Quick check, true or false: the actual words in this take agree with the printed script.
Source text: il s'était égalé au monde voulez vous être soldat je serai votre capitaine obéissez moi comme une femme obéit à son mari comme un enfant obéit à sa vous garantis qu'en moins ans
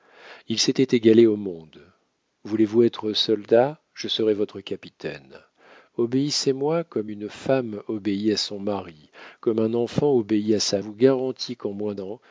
true